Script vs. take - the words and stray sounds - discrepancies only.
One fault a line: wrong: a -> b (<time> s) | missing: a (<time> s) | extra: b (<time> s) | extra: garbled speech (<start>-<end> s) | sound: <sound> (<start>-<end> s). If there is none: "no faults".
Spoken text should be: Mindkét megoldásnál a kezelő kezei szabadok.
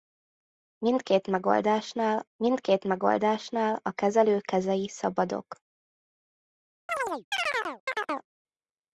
extra: mindkét megoldásnál (2.4 s)
sound: chirp (6.9-8.3 s)